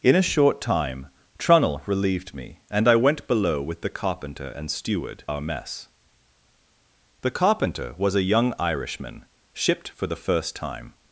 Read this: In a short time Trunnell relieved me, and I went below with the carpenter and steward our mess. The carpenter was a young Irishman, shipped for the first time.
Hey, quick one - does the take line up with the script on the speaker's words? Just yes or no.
yes